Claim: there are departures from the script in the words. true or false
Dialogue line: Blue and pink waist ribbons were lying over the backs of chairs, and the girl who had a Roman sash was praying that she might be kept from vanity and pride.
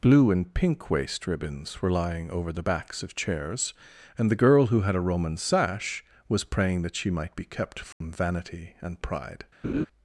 false